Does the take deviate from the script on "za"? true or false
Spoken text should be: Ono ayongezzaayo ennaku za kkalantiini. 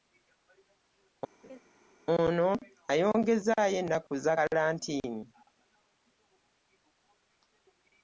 false